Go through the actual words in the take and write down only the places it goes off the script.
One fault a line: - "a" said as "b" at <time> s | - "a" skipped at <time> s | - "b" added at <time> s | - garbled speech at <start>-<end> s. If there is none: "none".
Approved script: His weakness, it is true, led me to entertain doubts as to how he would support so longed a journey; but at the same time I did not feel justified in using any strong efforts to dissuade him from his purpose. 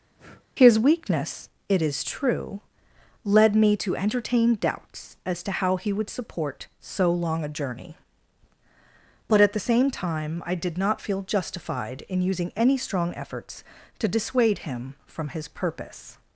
- "longed" said as "long" at 7.1 s